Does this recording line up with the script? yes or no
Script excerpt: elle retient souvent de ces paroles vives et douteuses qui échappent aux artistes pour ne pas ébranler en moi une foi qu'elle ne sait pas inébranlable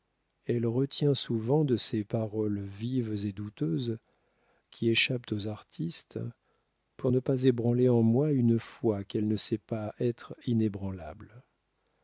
no